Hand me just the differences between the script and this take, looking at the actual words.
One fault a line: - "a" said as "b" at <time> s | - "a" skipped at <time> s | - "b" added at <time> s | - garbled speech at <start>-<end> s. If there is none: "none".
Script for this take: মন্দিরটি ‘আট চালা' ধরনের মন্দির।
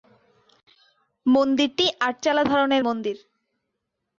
none